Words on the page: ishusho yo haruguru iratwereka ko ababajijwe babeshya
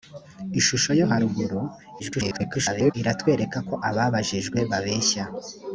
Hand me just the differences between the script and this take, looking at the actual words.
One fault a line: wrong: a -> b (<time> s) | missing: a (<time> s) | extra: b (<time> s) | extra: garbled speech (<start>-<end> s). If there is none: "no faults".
extra: garbled speech (2.0-2.9 s)